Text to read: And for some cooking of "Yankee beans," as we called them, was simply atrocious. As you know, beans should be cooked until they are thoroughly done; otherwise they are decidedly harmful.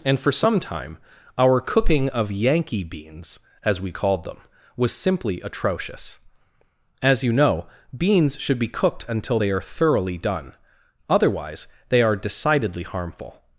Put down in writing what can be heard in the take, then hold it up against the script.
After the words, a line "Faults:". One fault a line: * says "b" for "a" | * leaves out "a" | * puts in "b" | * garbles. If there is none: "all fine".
And for some time our cooking of "Yankee beans," as we called them, was simply atrocious. As you know, beans should be cooked until they are thoroughly done; otherwise they are decidedly harmful.
Faults:
* puts in "time our"